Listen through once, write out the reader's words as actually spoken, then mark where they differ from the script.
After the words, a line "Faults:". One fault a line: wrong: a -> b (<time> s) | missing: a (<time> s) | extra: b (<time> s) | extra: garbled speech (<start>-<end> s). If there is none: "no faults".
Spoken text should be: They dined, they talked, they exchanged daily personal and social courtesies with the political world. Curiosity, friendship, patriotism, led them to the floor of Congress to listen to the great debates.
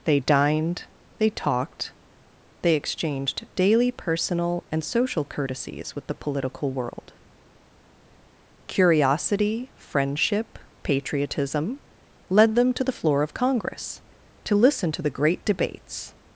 They dined, they talked, they exchanged daily personal and social courtesies with the political world. Curiosity, friendship, patriotism, led them to the floor of Congress to listen to the great debates.
Faults:
no faults